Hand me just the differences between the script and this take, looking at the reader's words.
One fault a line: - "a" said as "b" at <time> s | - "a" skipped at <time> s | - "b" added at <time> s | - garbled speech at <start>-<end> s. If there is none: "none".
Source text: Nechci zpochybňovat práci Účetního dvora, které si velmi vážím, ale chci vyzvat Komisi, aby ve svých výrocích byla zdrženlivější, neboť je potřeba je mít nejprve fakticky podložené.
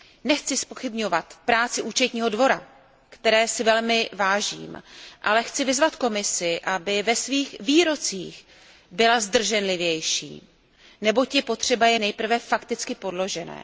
- "mít" skipped at 12.0 s